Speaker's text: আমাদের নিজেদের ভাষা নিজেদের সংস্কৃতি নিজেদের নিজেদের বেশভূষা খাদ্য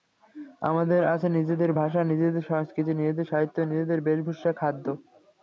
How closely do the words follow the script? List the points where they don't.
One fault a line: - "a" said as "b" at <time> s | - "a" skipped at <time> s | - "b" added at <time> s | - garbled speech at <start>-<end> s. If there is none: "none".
- "আছে" added at 1.1 s
- "সাহিত্য" added at 3.2 s